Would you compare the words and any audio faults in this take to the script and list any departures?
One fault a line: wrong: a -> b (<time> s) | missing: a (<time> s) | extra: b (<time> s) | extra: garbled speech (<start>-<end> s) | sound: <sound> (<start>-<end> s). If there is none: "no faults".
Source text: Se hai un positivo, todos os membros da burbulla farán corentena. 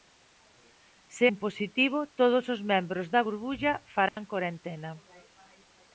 missing: hai (1.3 s)
sound: dropout (4.1-4.2 s)